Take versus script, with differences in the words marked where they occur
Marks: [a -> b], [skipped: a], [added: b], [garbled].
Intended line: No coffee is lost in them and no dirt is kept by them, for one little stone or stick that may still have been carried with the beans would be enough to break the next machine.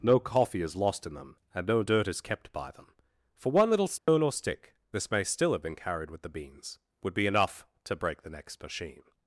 No coffee is lost in them and no dirt is kept by them, for one little stone or stick [that -> this] may still have been carried with the beans would be enough to break the next machine.